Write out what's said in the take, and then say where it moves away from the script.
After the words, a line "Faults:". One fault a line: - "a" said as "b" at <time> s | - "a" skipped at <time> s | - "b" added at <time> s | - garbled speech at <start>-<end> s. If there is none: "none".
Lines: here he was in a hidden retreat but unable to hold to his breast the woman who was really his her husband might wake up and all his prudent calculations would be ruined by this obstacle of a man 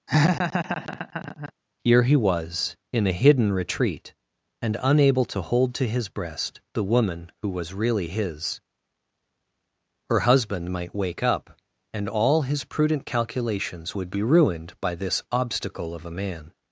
here he was in a hidden retreat and unable to hold to his breast the woman who was really his her husband might wake up and all his prudent calculations would be ruined by this obstacle of a man
Faults:
- "but" said as "and" at 4.6 s